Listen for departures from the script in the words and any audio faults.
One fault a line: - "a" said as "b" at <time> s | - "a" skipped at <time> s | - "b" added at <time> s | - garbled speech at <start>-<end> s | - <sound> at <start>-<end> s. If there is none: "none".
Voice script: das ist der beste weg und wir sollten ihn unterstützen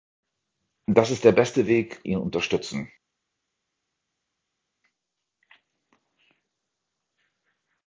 - "und wir sollten" skipped at 2.0 s